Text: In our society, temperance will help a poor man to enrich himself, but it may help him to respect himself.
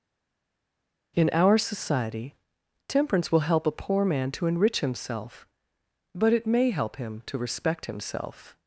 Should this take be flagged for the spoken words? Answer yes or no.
no